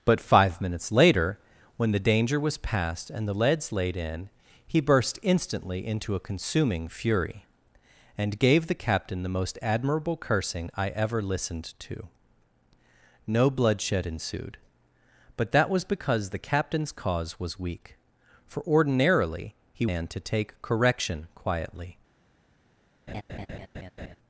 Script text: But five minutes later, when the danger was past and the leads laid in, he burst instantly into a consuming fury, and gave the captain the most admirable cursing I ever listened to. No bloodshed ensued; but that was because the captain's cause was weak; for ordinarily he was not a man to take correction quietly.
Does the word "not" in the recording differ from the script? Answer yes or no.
yes